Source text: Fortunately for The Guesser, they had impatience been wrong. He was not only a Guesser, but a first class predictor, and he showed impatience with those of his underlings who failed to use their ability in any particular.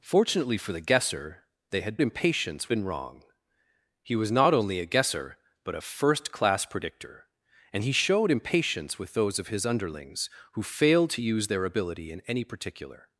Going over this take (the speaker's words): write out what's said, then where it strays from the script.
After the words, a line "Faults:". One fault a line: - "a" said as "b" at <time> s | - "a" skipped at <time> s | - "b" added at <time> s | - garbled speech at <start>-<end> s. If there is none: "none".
Fortunately for The Guesser, they had impatience been wrong. He was not only a Guesser, but a first class predictor, and he showed impatience with those of his underlings who failed to use their ability in any particular.
Faults:
none